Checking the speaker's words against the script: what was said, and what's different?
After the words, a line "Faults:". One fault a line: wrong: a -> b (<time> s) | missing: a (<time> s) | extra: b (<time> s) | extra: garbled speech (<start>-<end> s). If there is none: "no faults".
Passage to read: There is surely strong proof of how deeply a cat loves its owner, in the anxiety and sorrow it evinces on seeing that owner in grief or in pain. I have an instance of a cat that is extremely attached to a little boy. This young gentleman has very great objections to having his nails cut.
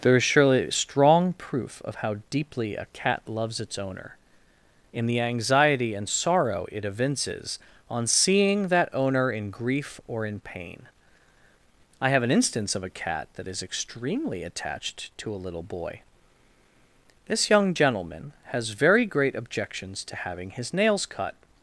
There is surely strong proof of how deeply a cat loves its owner, in the anxiety and sorrow it evinces on seeing that owner in grief or in pain. I have an instance of a cat that is extremely attached to a little boy. This young gentleman has very great objections to having his nails cut.
Faults:
no faults